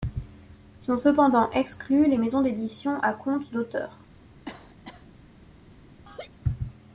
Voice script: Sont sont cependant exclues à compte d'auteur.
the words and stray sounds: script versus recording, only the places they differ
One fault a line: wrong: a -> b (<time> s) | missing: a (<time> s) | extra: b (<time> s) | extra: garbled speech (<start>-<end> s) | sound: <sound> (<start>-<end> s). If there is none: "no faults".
missing: sont (1.0 s)
extra: les maisons d'édition (2.1 s)
sound: cough (4.5-5.1 s)
sound: laugh (6.1-6.3 s)